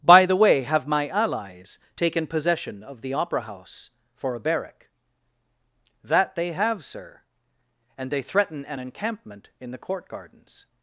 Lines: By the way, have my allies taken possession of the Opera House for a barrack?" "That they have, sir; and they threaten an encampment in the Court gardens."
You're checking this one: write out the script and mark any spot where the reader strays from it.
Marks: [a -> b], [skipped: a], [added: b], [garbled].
By the way, have my allies taken possession of the Opera House for a barrack?" "That they have, sir; and they threaten an encampment in the Court gardens."